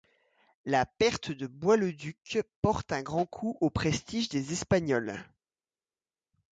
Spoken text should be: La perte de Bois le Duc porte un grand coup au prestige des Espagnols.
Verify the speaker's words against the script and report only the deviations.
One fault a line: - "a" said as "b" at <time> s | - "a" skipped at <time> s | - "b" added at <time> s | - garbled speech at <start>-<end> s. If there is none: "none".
none